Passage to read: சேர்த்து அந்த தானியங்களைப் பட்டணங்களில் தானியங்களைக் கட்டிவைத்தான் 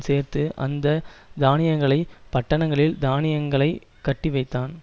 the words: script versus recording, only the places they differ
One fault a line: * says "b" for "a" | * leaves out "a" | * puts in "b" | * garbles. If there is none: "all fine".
all fine